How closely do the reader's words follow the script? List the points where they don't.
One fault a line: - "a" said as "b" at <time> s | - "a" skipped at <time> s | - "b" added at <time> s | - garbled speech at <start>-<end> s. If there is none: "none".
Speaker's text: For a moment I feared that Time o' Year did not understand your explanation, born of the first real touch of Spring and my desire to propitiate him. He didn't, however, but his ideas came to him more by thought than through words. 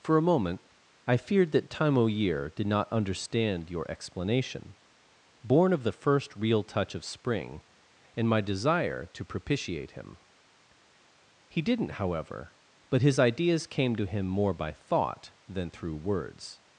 none